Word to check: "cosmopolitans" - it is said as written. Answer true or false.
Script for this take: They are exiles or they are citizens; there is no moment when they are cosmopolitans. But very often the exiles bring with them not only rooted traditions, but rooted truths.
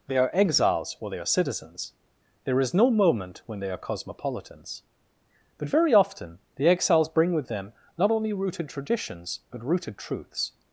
true